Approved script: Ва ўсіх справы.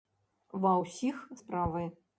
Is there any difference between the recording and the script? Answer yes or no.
no